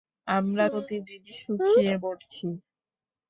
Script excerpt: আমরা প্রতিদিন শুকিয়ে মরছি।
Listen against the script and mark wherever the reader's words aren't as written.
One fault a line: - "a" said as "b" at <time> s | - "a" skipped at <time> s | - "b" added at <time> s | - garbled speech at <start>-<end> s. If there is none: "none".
none